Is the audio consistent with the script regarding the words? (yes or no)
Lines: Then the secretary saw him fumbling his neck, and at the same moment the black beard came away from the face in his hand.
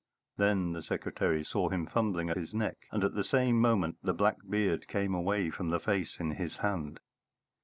yes